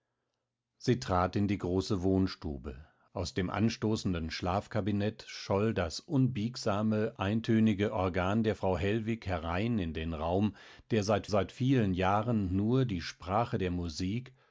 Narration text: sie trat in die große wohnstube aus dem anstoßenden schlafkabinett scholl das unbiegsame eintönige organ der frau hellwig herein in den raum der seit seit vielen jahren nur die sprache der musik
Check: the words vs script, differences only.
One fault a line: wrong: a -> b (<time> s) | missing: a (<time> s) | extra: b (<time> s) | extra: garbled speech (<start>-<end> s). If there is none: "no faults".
no faults